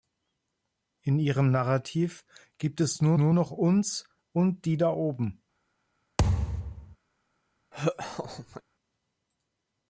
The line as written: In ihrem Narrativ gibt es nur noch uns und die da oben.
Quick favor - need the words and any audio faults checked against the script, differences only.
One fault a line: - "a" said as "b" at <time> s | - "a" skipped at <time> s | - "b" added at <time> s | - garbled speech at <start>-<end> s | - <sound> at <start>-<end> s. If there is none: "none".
- "nur" added at 3.2 s
- thud at 6.2-7.0 s
- laugh at 7.7-8.6 s